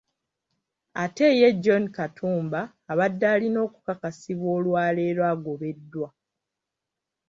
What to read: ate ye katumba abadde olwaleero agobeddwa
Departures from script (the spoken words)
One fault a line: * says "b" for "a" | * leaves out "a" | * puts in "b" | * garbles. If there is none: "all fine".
* puts in "john"
* puts in "alina okukakasibwa"